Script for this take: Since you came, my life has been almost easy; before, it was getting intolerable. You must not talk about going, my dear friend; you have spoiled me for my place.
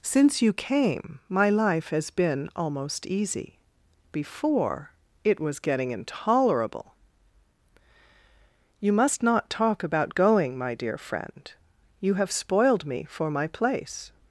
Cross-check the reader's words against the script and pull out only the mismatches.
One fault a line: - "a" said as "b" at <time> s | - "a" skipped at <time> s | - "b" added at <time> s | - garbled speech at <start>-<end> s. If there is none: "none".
none